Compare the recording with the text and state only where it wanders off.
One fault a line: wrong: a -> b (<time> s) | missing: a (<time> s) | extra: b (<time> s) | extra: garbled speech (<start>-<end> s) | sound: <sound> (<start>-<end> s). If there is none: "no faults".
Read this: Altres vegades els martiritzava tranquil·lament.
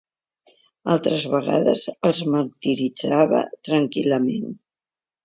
no faults